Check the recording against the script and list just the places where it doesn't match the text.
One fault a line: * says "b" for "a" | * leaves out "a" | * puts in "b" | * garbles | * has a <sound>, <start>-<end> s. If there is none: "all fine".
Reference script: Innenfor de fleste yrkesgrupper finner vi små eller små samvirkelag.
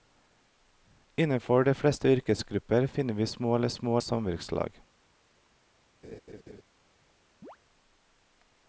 * has a laugh, 6.0-6.6 s
* has a chirp, 7.4-7.6 s